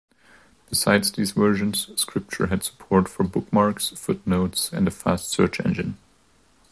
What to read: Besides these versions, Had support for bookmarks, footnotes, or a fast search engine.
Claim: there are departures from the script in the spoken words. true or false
true